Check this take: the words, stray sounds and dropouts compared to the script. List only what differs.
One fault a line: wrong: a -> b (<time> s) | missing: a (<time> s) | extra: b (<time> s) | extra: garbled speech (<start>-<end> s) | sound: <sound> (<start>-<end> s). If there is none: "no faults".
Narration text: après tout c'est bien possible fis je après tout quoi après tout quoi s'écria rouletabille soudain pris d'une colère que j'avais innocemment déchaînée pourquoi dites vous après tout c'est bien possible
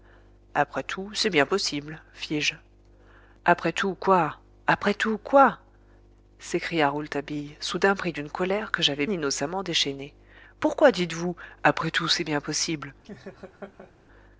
sound: laugh (13.0-13.9 s)